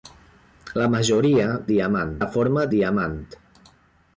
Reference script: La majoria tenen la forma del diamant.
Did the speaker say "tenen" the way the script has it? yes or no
no